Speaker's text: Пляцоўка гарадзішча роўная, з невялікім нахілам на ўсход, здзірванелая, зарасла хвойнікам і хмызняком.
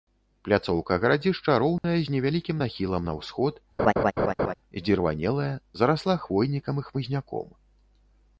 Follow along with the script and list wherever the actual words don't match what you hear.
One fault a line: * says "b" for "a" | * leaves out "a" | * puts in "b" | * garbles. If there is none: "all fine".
all fine